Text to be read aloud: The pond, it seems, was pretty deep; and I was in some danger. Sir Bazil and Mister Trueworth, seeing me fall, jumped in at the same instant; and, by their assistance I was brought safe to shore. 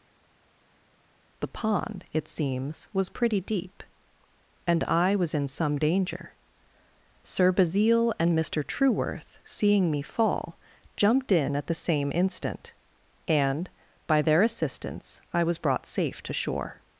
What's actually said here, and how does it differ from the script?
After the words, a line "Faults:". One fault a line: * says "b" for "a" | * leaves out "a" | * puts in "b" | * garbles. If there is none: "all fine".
The pond, it seems, was pretty deep; and I was in some danger. Sir Bazil and Mister Trueworth, seeing me fall, jumped in at the same instant; and, by their assistance I was brought safe to shore.
Faults:
all fine